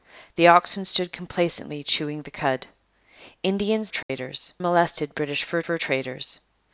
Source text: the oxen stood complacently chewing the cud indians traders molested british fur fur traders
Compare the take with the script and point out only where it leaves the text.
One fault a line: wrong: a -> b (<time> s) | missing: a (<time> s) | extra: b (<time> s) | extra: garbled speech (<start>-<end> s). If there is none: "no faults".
no faults